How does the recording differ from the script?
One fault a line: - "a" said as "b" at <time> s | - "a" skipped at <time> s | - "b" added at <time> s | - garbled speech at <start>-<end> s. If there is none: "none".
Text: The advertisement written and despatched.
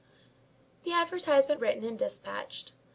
none